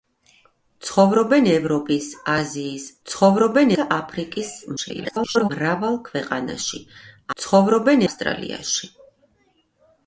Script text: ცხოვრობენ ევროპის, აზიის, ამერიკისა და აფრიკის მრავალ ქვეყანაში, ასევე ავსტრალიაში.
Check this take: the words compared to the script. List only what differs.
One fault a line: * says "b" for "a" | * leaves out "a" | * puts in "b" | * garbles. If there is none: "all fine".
* says "ცხოვრობენ" for "ამერიკისა"
* garbles
* says "ცხოვრობენ" for "ასევე"